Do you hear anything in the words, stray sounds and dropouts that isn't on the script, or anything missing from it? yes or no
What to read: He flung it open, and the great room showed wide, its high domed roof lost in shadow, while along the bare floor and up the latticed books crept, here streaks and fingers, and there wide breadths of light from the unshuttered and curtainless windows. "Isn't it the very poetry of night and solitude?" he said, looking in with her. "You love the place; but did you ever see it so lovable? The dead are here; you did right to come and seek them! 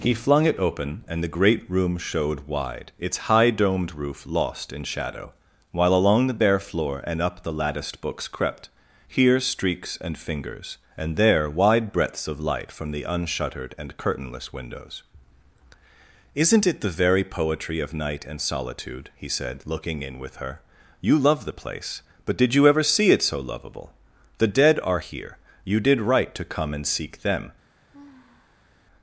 yes